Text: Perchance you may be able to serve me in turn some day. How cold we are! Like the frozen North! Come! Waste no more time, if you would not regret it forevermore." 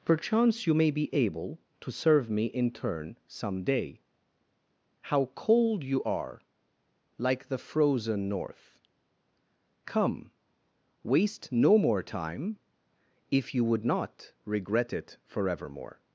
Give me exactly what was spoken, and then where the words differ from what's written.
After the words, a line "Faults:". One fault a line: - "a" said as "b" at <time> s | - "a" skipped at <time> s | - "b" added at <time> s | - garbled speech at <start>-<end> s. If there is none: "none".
Perchance you may be able to serve me in turn some day. How cold you are! Like the frozen North! Come! Waste no more time, if you would not regret it forevermore."
Faults:
- "we" said as "you" at 5.8 s